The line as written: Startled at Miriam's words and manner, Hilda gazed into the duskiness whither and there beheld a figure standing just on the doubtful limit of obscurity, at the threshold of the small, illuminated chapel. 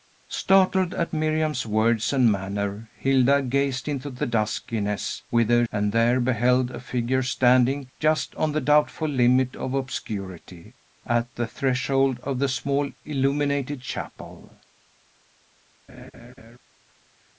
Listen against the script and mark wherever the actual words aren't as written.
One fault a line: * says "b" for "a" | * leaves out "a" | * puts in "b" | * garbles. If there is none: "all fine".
all fine